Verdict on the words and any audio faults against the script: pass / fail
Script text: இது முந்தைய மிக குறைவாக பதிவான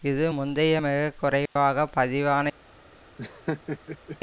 fail